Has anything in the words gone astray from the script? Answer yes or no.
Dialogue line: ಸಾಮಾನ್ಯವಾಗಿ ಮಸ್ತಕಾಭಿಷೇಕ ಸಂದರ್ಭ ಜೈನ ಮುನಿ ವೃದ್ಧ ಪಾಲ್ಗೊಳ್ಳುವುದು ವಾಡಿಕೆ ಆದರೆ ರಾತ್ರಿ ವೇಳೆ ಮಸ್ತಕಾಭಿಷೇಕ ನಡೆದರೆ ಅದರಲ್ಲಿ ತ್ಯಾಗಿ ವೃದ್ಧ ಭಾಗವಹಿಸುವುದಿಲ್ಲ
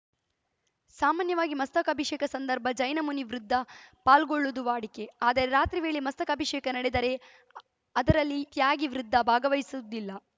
no